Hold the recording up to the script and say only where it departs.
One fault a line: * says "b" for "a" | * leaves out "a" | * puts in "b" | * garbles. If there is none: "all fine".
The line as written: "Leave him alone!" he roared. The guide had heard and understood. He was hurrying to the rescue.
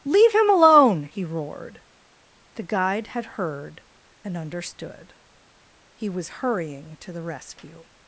all fine